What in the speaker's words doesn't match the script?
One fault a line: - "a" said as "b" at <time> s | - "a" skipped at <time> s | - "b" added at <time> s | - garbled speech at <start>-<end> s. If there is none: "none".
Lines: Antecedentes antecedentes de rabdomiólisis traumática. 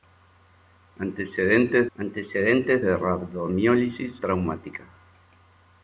none